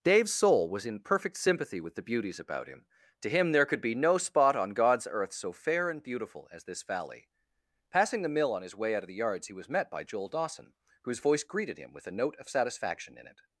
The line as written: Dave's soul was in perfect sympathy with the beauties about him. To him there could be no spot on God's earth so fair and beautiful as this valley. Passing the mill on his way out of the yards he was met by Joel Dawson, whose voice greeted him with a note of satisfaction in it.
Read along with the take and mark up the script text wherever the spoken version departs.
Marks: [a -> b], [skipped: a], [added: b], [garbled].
Dave's soul was in perfect sympathy with the beauties about him. To him there could be no spot on God's earth so fair and beautiful as this valley. Passing the mill on his way out of the yards he was met by Joel Dawson, whose voice greeted him with a note of satisfaction in it.